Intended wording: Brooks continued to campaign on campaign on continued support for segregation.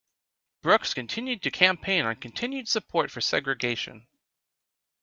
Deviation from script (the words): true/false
true